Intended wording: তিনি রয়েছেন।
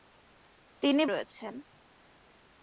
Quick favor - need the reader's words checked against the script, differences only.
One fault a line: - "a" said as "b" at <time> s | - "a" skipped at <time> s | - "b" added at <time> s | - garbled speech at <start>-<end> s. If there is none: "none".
none